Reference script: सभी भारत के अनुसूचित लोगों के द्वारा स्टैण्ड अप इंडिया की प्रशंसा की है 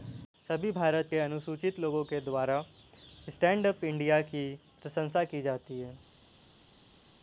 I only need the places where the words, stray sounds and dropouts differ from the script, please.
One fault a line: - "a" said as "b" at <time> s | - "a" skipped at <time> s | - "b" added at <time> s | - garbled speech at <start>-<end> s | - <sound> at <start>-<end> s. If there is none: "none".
- "जाती" added at 5.4 s